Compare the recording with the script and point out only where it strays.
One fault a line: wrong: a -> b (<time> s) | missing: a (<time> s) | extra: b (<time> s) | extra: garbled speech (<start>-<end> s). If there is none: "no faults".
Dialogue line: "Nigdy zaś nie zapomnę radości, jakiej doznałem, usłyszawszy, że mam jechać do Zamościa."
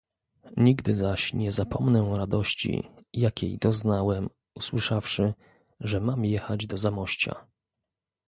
no faults